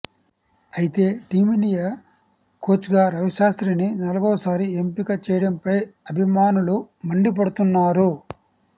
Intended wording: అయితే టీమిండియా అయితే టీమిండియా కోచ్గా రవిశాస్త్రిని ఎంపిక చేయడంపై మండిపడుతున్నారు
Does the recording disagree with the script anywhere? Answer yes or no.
yes